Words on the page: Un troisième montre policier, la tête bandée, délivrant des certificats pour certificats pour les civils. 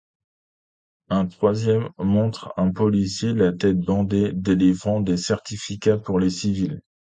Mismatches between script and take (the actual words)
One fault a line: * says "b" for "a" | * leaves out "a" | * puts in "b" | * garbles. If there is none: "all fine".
* puts in "un"
* leaves out "certificats pour"